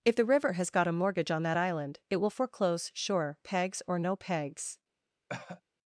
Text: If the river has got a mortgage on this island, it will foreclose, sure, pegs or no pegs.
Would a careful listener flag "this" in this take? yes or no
yes